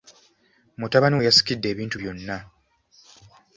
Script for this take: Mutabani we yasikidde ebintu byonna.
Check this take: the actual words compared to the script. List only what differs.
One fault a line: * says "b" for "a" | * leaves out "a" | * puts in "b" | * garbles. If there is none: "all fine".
all fine